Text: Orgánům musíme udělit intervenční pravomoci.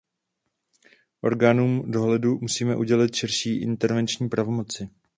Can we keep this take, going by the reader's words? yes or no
no